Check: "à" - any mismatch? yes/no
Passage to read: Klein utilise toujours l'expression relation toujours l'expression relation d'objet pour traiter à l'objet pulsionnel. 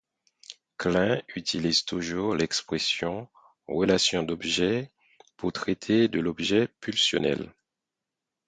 yes